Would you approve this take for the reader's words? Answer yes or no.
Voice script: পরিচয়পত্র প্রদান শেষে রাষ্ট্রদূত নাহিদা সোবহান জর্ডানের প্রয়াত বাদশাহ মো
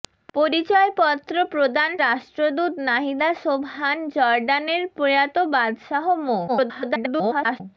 no